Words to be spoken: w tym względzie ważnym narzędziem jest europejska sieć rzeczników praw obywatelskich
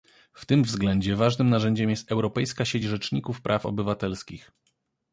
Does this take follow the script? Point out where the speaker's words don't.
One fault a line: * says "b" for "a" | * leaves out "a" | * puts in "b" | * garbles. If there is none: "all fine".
all fine